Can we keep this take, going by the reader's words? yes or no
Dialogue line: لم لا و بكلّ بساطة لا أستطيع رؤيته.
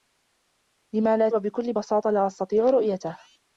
yes